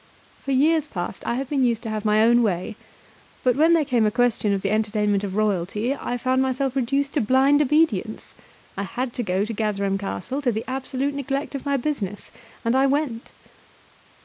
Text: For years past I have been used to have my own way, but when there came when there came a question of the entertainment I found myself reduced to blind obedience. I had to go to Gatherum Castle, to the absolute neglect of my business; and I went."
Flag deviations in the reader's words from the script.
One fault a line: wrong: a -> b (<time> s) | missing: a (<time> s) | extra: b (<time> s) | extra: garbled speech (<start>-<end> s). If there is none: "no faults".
missing: when there came (4.1 s)
extra: of royalty (5.2 s)